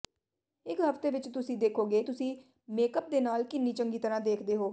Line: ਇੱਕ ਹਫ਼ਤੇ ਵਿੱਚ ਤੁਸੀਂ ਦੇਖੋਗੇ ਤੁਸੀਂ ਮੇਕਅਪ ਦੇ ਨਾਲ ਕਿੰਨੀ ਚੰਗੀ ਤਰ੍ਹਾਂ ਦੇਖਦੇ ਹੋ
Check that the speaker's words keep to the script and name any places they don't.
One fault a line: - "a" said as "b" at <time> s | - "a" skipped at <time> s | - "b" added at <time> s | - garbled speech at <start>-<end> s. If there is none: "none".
none